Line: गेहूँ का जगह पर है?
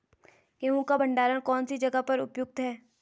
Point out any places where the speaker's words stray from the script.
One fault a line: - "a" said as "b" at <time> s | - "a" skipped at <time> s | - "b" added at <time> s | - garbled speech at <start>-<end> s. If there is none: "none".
- "भंडारण कौन सी" added at 1.0 s
- "उपयुक्त" added at 2.2 s